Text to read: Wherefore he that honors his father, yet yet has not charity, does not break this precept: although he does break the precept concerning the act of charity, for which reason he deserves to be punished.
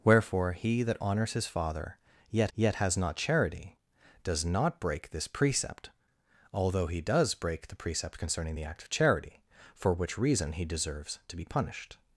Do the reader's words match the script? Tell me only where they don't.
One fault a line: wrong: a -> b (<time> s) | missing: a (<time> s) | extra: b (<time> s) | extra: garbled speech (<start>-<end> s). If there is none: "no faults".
no faults